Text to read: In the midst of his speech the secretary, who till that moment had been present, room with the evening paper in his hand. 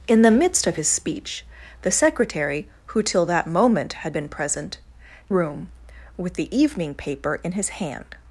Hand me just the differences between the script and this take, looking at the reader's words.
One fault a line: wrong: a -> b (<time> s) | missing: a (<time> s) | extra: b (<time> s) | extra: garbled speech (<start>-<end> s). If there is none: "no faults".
no faults